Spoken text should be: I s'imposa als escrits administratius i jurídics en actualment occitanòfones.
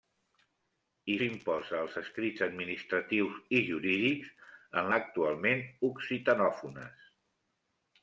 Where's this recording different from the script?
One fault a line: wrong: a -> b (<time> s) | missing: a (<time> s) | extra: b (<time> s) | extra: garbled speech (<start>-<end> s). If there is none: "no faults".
no faults